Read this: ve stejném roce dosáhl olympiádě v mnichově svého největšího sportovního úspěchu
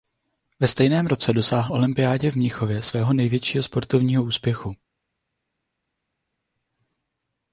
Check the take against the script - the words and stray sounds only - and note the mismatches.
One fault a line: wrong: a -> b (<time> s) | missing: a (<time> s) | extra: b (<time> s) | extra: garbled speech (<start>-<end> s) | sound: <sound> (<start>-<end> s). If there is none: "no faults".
no faults